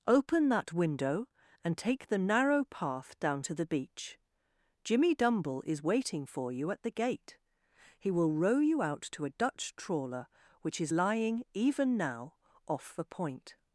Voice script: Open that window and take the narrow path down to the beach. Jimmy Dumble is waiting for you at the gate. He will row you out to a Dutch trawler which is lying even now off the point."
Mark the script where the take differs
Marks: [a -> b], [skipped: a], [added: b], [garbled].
Open that window and take the narrow path down to the beach. Jimmy Dumble is waiting for you at the gate. He will row you out to a Dutch trawler which is lying even now off the point."